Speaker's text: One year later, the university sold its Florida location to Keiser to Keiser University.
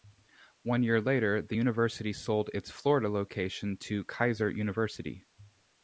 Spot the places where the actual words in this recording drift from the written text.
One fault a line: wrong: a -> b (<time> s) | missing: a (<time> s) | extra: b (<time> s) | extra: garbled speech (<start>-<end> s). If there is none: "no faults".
missing: to Keiser (4.5 s)